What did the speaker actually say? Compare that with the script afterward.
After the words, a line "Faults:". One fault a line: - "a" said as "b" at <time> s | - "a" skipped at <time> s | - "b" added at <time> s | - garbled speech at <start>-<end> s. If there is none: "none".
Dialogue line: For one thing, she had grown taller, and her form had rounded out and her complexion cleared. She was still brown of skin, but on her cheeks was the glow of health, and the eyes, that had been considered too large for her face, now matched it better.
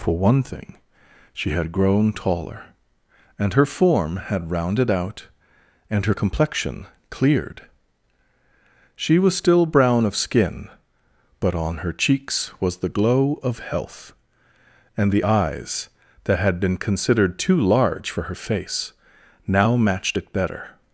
For one thing, she had grown taller, and her form had rounded out and her complexion cleared. She was still brown of skin, but on her cheeks was the glow of health, and the eyes, that had been considered too large for her face, now matched it better.
Faults:
none